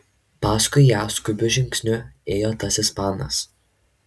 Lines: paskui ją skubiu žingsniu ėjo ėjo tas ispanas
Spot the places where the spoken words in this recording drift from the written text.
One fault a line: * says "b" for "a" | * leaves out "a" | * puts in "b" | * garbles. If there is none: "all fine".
* leaves out "ėjo"